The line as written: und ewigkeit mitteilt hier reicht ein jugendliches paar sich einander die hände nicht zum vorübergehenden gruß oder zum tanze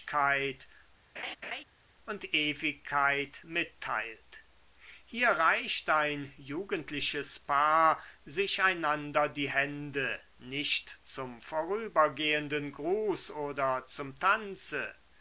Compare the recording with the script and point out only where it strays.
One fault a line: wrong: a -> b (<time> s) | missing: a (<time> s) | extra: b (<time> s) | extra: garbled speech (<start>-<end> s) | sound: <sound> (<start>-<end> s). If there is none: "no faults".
sound: laugh (1.2-1.6 s)